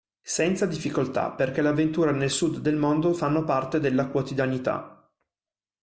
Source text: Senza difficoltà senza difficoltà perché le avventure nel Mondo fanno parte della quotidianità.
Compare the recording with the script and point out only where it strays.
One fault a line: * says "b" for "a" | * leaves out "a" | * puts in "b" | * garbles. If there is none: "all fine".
* leaves out "senza difficoltà"
* puts in "Sud del"